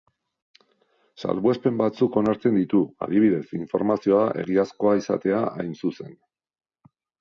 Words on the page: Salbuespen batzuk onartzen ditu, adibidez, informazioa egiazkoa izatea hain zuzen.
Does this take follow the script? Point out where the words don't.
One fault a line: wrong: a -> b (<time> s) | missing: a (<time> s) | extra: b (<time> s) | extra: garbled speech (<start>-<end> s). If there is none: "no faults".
no faults